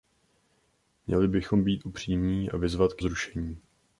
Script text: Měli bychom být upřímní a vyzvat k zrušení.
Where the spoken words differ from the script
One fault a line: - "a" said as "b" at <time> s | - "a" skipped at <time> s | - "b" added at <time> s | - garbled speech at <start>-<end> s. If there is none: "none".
none